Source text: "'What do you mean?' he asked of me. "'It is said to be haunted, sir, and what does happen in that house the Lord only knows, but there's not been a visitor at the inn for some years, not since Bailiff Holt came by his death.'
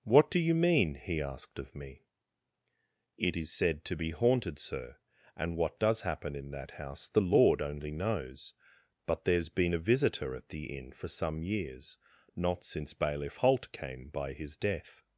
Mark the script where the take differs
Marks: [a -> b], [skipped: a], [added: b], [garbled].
"'What do you mean?' he asked of me. "'It is said to be haunted, sir, and what does happen in that house the Lord only knows, but there's [skipped: not] been a visitor at the inn for some years, not since Bailiff Holt came by his death.'